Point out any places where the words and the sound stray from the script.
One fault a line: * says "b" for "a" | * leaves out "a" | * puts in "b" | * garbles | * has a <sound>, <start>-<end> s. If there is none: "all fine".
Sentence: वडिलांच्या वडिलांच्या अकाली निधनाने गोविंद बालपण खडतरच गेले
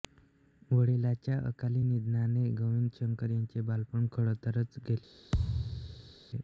* leaves out "वडिलांच्या"
* puts in "शंकर यांचे"
* has a thud, 5.3-6.1 s